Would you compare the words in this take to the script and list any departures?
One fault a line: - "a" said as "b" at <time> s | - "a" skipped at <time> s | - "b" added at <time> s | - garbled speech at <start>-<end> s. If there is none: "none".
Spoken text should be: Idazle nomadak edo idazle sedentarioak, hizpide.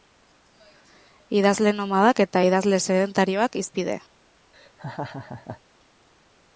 - "edo" said as "eta" at 2.2 s